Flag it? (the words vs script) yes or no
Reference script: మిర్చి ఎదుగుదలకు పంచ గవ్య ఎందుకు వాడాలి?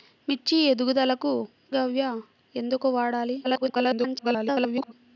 yes